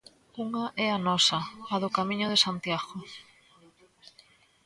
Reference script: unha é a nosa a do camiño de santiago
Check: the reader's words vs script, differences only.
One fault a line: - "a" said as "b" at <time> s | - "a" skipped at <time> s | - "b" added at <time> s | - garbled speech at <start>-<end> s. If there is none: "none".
none